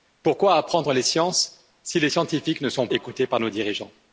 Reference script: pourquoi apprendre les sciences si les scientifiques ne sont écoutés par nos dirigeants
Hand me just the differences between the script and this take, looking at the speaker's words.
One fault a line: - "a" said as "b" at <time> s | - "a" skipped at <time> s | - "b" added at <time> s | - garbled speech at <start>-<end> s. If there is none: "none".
none